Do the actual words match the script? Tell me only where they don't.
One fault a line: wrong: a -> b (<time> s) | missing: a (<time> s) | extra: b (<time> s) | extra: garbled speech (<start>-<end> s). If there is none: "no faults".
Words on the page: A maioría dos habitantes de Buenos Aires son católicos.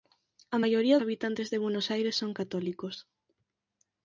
missing: dos (1.0 s)